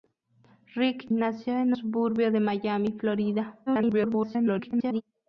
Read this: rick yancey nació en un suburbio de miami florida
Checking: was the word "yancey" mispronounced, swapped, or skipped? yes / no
yes